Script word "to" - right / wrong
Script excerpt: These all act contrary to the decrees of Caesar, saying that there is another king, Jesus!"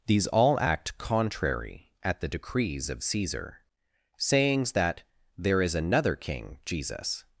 wrong